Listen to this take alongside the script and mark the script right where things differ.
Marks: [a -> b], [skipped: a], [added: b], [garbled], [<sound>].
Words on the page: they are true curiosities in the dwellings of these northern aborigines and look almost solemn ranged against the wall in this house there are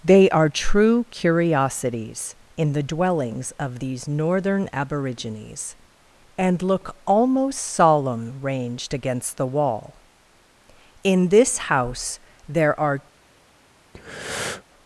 they are true curiosities in the dwellings of these northern aborigines and look almost solemn ranged against the wall in this house there are [breath]